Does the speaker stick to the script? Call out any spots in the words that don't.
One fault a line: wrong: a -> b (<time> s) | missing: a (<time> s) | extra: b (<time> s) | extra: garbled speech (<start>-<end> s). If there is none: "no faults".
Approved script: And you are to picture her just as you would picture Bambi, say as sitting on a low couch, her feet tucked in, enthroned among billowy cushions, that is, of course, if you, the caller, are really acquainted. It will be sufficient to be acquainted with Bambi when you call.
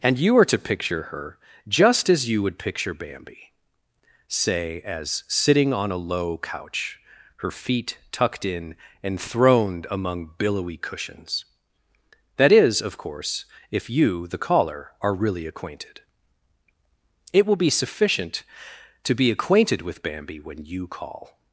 no faults